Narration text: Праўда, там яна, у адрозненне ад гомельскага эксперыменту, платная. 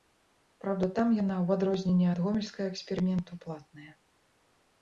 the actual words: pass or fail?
pass